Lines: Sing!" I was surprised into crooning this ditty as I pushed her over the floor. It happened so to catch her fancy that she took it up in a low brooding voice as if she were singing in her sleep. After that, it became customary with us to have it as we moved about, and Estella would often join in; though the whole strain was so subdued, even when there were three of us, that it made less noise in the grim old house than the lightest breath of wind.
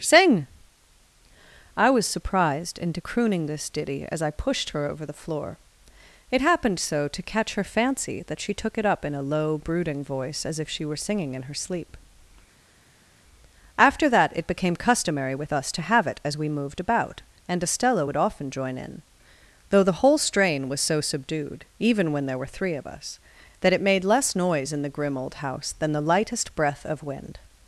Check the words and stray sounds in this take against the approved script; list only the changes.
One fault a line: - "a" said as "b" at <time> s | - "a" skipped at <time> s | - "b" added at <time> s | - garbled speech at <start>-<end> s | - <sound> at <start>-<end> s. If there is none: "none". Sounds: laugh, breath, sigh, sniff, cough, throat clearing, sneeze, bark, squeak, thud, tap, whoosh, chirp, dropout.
none